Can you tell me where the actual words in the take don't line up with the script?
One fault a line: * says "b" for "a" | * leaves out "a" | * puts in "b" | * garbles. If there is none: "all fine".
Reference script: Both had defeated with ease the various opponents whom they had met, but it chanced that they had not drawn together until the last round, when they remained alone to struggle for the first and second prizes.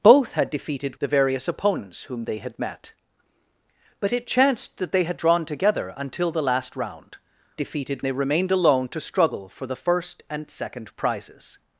* leaves out "with ease"
* leaves out "not"
* says "defeated" for "when"